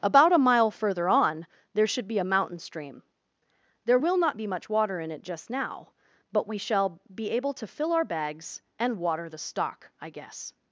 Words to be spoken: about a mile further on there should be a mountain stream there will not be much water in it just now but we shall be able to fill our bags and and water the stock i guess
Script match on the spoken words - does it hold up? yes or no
no